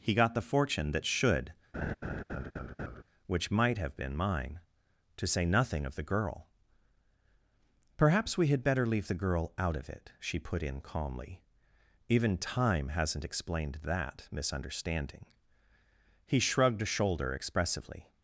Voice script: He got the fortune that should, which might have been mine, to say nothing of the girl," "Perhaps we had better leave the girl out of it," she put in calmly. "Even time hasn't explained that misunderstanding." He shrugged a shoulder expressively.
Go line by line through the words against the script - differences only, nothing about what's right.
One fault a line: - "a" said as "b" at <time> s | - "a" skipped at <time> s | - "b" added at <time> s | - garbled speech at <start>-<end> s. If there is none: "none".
none